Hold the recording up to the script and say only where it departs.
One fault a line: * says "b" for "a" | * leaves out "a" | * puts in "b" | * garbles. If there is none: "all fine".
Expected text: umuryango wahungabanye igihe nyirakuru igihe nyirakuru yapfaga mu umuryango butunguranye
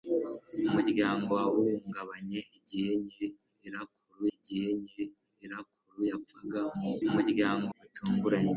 all fine